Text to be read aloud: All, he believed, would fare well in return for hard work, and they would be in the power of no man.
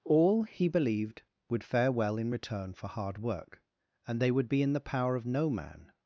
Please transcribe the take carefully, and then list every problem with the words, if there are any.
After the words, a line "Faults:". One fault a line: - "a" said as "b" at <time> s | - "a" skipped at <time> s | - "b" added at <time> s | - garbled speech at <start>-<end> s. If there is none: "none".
All, he believed, would fare well in return for hard work, and they would be in the power of no man.
Faults:
none